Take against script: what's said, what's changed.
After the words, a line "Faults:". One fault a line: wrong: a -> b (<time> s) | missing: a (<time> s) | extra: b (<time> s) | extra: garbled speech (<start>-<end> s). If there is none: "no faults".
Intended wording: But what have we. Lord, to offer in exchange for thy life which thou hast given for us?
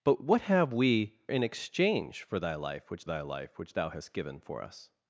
But what have we. In exchange for thy life which thy life which thou hast given for us?
Faults:
wrong: Lord to offer in exchange for -> In exchange for thy life which (1.3 s)